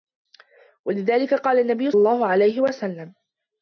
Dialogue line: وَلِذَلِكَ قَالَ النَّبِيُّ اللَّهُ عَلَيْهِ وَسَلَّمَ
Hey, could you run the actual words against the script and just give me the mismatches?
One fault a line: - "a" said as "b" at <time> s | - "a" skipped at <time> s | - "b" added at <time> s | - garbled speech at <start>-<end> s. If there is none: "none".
none